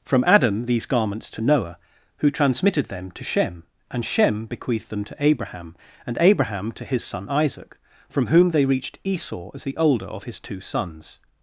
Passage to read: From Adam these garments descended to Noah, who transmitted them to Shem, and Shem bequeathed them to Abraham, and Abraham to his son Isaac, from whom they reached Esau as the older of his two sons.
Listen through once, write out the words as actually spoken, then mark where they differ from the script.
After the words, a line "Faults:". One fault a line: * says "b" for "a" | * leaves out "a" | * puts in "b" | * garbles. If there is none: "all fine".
From Adam these garments to Noah, who transmitted them to Shem, and Shem bequeathed them to Abraham, and Abraham to his son Isaac, from whom they reached Esau as the older of his two sons.
Faults:
* leaves out "descended"